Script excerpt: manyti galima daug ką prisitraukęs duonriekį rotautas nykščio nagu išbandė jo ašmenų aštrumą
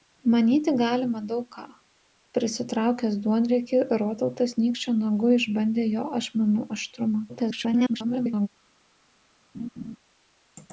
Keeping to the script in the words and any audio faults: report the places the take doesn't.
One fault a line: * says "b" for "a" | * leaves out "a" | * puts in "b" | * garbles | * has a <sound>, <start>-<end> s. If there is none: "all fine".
* garbles
* has a laugh, 9.5-10.0 s